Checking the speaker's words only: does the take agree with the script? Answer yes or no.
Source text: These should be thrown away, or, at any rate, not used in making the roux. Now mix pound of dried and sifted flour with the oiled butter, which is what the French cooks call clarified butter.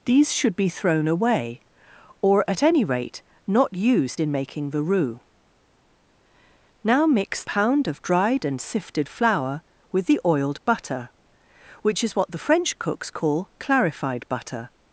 yes